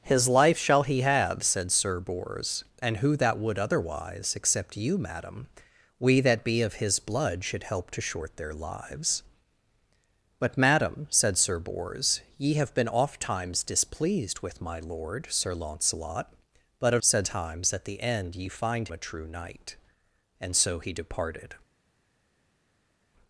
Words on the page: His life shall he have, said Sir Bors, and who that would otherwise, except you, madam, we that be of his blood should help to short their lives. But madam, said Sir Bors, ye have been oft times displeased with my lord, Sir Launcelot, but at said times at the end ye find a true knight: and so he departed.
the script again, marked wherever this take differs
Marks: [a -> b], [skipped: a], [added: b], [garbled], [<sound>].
His life shall he have, said Sir Bors, and who that would otherwise, except you, madam, we that be of his blood should help to short their lives. But madam, said Sir Bors, ye have been oft times displeased with my lord, Sir Launcelot, but at said times at the end ye find a true knight: and so he departed.